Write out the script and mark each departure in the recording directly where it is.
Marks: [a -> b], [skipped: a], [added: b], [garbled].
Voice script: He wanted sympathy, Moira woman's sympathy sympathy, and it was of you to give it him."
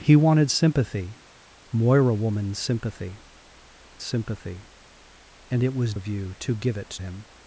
He wanted sympathy, Moira woman's sympathy sympathy, and it was of you to give it him."